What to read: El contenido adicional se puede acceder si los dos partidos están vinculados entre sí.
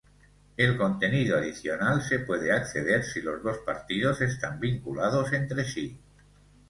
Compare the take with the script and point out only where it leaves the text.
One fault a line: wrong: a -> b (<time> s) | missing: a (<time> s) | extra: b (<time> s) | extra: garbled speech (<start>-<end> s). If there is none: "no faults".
no faults